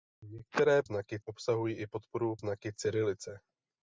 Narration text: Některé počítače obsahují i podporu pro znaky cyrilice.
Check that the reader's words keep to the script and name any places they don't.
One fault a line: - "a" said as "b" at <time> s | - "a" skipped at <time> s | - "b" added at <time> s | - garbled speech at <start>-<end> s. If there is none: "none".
- "počítače" said as "znaky" at 0.8 s
- "pro" skipped at 2.4 s